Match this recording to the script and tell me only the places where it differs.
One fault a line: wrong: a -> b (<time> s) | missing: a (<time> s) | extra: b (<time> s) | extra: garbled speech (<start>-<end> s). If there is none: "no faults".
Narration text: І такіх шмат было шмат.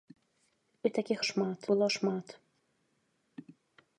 no faults